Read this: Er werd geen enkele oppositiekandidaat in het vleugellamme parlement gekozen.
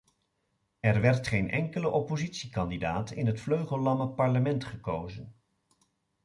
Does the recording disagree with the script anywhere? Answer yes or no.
no